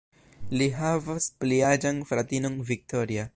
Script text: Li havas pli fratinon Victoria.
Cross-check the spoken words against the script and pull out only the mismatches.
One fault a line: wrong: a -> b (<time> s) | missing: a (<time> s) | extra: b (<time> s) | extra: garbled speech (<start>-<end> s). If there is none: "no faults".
extra: aĝan (1.7 s)